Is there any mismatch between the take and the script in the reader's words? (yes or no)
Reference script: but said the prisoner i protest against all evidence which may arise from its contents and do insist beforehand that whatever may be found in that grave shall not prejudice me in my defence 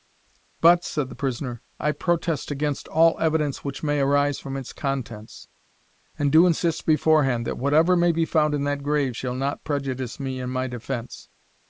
no